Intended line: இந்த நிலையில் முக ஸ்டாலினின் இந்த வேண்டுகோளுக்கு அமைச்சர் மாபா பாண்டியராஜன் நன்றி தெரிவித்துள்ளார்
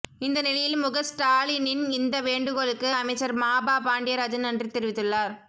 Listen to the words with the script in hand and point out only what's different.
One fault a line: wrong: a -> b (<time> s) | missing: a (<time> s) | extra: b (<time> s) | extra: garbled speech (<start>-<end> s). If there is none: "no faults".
no faults